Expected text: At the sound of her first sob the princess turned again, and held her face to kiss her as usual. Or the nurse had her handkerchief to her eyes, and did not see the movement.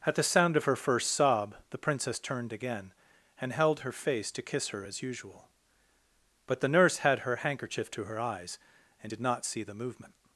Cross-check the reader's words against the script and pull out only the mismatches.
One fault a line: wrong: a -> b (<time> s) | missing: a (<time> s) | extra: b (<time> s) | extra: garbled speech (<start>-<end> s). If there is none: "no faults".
wrong: Or -> But (6.5 s)